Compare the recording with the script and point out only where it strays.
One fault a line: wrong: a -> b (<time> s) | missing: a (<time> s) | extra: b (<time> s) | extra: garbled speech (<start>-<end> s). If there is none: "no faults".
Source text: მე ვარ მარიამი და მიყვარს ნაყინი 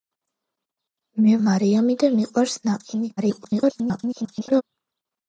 missing: ვარ (1.4 s)
extra: garbled speech (3.2-4.6 s)